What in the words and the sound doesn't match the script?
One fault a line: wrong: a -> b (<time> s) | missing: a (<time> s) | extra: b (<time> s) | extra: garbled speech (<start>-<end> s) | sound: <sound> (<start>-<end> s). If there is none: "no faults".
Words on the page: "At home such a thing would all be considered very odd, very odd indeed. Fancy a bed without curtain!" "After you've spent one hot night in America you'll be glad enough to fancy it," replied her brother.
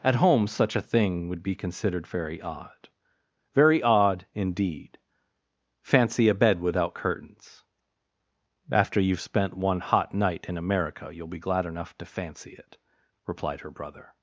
missing: all (1.4 s)
wrong: curtain -> curtains (7.0 s)